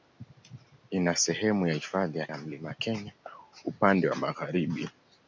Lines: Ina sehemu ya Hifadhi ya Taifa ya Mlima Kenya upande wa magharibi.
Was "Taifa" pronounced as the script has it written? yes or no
no